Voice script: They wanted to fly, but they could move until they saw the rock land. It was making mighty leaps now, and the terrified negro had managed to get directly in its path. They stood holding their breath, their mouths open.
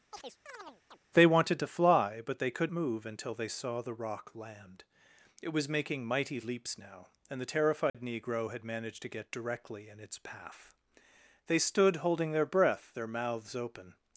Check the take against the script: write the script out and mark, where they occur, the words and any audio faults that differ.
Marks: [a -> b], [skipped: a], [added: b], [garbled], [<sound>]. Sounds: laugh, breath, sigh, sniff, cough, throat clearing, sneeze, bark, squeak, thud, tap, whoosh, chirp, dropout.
[chirp] They wanted to fly, but they could move until they saw the rock land. It was making mighty leaps now, and the terrified [dropout] negro had managed to get directly in its path. They stood holding their breath, their mouths open.